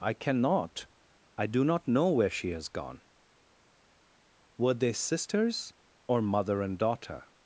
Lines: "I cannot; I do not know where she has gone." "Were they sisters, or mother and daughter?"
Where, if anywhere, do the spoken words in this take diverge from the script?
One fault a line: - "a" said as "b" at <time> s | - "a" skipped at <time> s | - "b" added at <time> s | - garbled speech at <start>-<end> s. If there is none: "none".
none